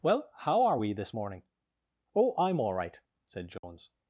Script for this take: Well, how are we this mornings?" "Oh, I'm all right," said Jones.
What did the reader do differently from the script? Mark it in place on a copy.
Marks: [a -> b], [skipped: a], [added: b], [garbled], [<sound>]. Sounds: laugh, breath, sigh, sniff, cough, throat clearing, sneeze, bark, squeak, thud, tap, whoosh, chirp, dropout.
Well, how are we this [mornings?" -> morning] "Oh, I'm all right," said Jones. [dropout]